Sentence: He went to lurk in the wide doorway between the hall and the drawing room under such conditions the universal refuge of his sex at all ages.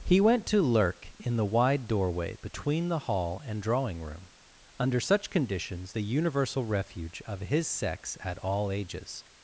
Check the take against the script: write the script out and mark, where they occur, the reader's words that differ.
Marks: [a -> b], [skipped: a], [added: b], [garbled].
He went to lurk in the wide doorway between the hall and [skipped: the] drawing room under such conditions the universal refuge of his sex at all ages.